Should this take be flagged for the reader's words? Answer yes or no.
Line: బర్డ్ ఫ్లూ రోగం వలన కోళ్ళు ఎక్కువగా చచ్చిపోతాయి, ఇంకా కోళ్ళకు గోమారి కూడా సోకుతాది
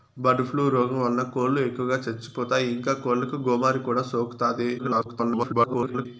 yes